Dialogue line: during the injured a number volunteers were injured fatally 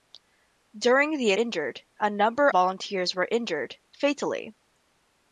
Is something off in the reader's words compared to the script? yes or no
no